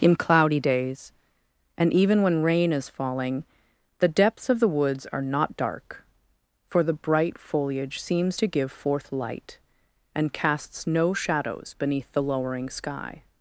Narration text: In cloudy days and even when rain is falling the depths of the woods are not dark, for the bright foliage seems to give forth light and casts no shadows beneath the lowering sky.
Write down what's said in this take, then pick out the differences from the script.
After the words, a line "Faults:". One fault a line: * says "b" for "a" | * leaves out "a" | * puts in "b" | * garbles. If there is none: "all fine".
In cloudy days and even when rain is falling the depths of the woods are not dark, for the bright foliage seems to give forth light and casts no shadows beneath the lowering sky.
Faults:
all fine